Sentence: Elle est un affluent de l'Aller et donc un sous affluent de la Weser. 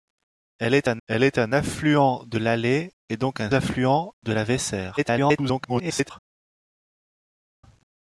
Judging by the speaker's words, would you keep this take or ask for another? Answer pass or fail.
fail